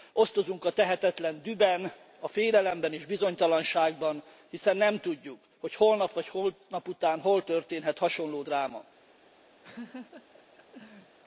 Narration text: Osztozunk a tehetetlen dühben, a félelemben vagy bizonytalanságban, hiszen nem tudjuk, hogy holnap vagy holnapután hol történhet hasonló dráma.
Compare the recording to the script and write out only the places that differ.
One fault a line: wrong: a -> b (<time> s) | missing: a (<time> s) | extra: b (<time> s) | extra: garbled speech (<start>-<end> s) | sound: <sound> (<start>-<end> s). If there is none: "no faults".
wrong: vagy -> és (2.9 s)
sound: laugh (9.6-11.2 s)